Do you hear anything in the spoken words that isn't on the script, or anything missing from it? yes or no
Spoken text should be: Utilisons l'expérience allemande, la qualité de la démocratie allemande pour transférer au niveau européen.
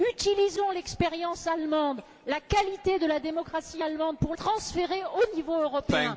no